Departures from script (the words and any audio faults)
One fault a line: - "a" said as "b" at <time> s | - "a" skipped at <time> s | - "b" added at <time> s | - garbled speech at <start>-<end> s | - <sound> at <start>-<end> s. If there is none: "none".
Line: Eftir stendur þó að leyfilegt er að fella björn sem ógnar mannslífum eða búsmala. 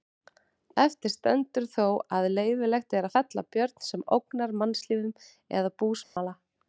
- dropout at 6.0-6.2 s